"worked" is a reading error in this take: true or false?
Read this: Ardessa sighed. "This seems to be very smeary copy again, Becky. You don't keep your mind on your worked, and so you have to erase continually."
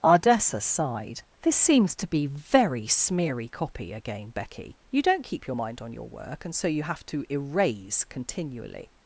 true